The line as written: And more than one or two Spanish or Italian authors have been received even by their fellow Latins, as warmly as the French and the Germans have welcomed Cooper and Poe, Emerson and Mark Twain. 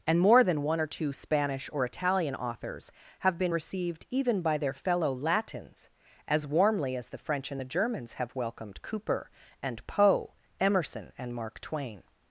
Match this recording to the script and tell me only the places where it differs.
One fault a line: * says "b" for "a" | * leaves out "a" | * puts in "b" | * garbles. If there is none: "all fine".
all fine